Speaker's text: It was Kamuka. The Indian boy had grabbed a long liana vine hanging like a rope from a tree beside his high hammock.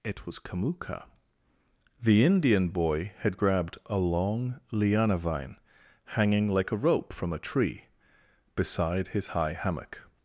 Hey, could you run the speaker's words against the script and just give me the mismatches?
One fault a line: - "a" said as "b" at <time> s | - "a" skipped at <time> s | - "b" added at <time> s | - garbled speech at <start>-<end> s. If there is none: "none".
none